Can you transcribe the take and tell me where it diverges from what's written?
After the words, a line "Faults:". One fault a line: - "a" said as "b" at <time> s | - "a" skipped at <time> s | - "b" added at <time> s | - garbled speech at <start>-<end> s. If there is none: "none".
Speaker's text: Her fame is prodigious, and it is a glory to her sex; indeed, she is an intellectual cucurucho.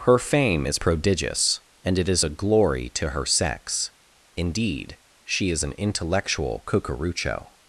Her fame is prodigious, and it is a glory to her sex; indeed, she is an intellectual cucurucho.
Faults:
none